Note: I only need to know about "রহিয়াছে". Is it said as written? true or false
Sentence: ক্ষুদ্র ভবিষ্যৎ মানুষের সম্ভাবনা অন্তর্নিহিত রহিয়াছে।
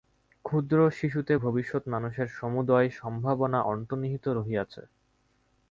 true